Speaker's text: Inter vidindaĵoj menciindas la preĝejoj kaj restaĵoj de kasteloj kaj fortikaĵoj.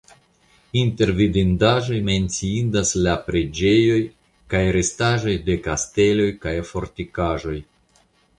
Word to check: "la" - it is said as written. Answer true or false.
true